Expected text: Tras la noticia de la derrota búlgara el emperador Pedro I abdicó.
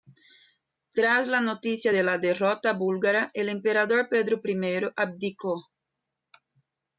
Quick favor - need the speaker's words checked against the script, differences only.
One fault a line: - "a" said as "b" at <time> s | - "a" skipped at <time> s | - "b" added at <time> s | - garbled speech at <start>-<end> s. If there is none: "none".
none